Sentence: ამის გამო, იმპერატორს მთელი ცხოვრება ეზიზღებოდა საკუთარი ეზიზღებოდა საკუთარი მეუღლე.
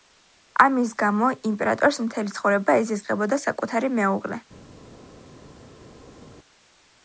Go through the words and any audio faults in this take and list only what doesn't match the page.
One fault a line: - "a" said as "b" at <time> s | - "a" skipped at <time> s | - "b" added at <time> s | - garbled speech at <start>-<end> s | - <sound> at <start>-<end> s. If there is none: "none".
- "ეზიზღებოდა საკუთარი" skipped at 4.0 s